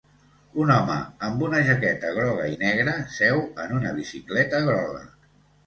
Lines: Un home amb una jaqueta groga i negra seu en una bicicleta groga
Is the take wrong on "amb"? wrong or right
right